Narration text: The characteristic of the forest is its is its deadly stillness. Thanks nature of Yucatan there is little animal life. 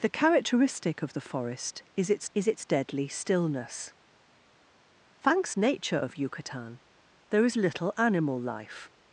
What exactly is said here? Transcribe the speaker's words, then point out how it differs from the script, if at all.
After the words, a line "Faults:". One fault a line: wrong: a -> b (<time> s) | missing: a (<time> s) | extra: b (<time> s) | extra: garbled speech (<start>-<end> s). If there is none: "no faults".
The characteristic of the forest is its is its deadly stillness. Thanks nature of Yucatan there is little animal life.
Faults:
no faults